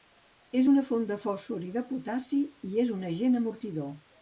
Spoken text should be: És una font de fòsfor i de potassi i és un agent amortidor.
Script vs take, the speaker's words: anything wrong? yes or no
no